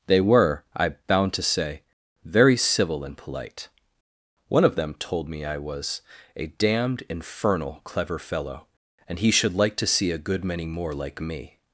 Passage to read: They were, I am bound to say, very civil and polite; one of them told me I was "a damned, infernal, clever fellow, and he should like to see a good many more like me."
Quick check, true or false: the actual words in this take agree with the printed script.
false